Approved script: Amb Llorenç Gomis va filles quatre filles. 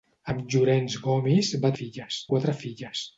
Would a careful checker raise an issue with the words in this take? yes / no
no